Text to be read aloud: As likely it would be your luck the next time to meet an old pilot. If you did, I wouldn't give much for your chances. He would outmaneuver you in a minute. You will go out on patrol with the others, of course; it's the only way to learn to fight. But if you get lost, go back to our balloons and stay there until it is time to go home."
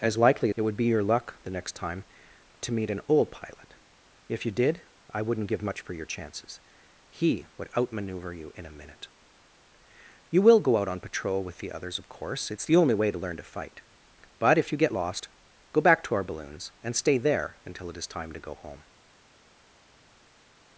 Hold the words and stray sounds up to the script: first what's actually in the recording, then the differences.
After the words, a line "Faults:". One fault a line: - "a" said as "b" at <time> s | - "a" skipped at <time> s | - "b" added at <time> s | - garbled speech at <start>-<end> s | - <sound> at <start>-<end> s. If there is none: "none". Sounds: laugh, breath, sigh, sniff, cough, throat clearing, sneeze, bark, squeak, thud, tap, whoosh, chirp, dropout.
As likely it would be your luck the next time to meet an old pilot. If you did, I wouldn't give much for your chances. He would outmaneuver you in a minute. You will go out on patrol with the others, of course; it's the only way to learn to fight. But if you get lost, go back to our balloons and stay there until it is time to go home."
Faults:
none